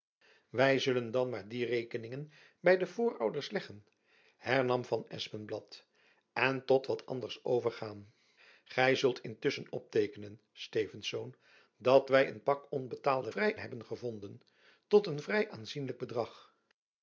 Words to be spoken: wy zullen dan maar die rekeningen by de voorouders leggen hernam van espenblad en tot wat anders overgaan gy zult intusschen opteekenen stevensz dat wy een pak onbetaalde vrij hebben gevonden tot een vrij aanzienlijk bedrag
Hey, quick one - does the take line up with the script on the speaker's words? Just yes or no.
yes